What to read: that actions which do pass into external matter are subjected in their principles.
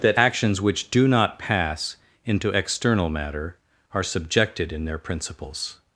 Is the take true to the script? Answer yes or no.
no